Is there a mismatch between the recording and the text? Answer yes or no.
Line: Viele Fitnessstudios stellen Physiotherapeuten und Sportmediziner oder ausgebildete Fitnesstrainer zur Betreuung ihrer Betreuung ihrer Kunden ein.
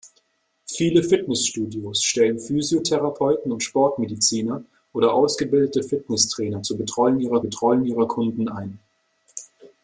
no